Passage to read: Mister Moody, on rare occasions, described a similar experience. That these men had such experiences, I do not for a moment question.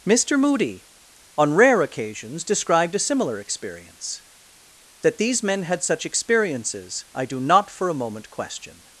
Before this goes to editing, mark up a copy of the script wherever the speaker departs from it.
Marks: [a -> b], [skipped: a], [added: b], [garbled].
Mister Moody, on rare occasions, described a similar experience. That these men had such experiences, I do not for a moment question.